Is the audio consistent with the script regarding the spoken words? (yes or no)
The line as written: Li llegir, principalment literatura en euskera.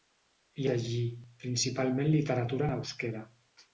yes